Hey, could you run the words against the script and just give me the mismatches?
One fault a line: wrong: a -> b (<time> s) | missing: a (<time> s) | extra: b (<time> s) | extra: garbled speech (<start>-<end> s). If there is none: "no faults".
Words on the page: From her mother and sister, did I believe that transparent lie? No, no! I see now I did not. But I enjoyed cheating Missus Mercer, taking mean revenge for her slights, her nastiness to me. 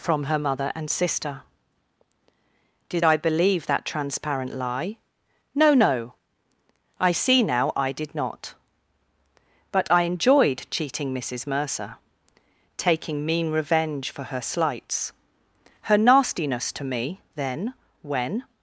extra: Then when (17.3 s)